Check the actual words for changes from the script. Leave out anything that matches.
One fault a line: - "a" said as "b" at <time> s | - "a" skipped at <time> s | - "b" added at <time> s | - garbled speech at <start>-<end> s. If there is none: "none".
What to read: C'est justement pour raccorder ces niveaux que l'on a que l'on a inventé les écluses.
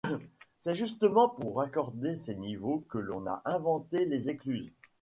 - "que l'on a" skipped at 3.4 s